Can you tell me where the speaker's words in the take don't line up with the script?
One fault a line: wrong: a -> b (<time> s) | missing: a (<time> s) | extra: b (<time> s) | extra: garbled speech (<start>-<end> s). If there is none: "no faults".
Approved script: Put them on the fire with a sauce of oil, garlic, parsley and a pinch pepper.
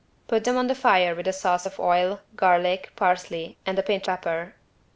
no faults